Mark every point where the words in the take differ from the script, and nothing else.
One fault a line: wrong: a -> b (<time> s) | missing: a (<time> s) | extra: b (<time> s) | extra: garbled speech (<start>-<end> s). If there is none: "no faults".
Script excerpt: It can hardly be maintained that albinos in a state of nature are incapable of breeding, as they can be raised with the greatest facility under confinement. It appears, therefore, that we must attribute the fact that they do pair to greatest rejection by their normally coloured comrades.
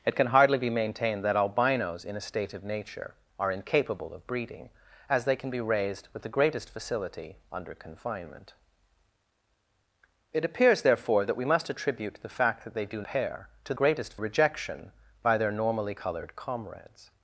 no faults